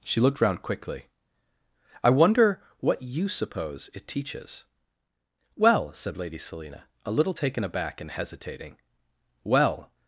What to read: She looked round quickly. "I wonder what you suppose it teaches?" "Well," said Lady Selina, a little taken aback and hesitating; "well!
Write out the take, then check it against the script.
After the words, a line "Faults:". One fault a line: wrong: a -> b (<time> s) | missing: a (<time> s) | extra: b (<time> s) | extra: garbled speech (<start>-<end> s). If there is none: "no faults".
She looked round quickly. "I wonder what you suppose it teaches?" "Well," said Lady Selina, a little taken aback and hesitating; "well!
Faults:
no faults